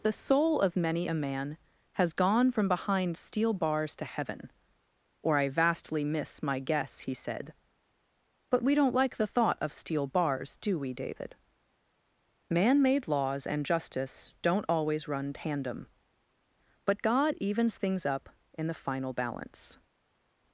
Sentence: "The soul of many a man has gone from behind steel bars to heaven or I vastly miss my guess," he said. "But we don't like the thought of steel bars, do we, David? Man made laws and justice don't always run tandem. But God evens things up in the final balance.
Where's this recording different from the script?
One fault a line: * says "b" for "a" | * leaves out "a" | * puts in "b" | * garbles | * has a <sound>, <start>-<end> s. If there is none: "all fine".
all fine